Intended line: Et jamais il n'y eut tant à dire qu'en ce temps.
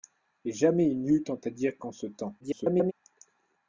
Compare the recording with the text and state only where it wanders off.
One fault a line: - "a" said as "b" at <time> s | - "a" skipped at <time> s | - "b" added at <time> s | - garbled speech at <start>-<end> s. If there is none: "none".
- garbled speech at 2.4-2.9 s